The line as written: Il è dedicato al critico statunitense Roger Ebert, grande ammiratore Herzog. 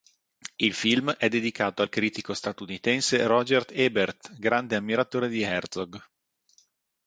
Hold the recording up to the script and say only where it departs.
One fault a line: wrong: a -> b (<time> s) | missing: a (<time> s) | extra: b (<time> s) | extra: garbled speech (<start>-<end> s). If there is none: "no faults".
extra: film (0.7 s)
extra: di (5.3 s)